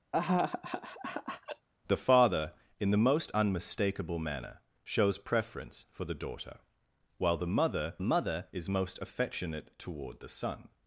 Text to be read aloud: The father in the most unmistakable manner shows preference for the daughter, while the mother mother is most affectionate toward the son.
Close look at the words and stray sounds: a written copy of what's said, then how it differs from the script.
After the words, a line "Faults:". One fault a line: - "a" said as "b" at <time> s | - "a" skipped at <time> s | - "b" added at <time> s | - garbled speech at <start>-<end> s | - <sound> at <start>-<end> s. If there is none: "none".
The father in the most unmistakable manner shows preference for the daughter, while the mother mother is most affectionate toward the son.
Faults:
- laugh at 0.1-1.7 s